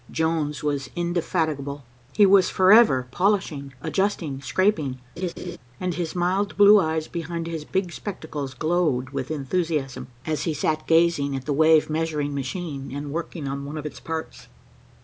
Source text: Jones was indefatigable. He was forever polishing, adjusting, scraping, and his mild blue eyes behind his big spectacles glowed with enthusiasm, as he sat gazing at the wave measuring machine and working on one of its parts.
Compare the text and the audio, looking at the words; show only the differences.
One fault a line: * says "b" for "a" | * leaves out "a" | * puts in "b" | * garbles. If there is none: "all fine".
all fine